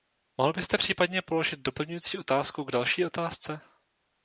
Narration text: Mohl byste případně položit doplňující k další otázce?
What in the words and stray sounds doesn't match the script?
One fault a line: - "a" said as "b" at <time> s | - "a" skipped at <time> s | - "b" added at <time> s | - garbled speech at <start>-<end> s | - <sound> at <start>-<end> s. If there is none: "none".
- "otázku" added at 2.2 s